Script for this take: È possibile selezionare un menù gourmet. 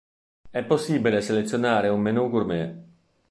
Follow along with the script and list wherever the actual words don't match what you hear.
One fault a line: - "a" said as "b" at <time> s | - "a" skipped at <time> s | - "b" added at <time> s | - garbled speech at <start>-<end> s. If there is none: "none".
none